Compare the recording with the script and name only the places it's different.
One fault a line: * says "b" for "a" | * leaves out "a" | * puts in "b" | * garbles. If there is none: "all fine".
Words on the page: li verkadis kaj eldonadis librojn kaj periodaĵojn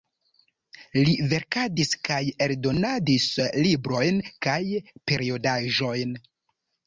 all fine